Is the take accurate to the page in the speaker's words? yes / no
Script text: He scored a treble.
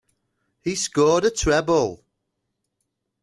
yes